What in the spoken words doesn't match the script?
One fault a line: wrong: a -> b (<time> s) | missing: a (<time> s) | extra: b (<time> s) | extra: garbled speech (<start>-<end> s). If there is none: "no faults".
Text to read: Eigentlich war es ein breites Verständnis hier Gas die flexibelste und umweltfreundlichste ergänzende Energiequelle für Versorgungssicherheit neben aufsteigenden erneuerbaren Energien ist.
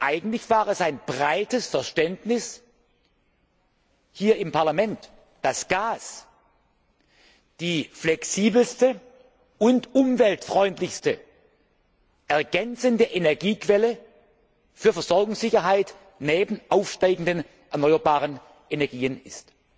extra: im Parlament dass (4.4 s)